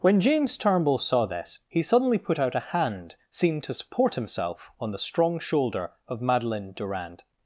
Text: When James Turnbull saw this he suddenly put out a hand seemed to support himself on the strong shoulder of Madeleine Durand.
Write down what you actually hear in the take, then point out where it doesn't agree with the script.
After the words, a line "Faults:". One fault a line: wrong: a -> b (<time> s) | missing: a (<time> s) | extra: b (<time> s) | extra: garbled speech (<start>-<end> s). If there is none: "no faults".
When James Turnbull saw this he suddenly put out a hand seemed to support himself on the strong shoulder of Madeleine Durand.
Faults:
no faults